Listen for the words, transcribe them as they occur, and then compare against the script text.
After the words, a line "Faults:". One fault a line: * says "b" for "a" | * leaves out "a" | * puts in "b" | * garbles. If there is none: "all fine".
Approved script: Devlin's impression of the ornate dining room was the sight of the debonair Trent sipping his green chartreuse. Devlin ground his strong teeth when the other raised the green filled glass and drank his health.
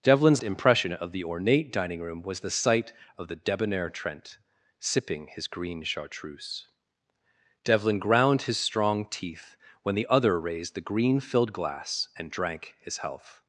Devlin's impression of the ornate dining room was the sight of the debonair Trent sipping his green chartreuse. Devlin ground his strong teeth when the other raised the green filled glass and drank his health.
Faults:
all fine